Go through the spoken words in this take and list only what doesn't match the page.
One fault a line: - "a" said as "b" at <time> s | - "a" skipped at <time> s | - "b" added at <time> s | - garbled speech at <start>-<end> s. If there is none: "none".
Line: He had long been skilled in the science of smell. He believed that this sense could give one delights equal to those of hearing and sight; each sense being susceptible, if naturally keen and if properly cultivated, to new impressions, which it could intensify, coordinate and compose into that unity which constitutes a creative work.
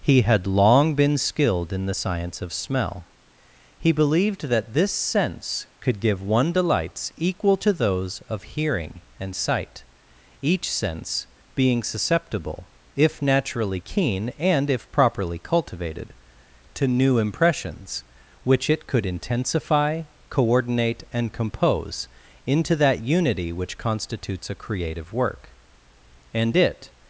- "And it" added at 26.3 s